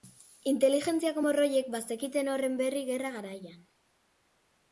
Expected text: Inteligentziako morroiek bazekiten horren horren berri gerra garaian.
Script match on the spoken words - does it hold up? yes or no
no